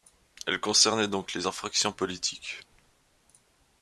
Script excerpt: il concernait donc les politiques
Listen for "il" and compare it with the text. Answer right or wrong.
wrong